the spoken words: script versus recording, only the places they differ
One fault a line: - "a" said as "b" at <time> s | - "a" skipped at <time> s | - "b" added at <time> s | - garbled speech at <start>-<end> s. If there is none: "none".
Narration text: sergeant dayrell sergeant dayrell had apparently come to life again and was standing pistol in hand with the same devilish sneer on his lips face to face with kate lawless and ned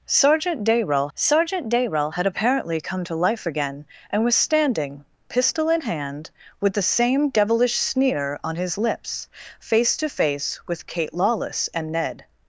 none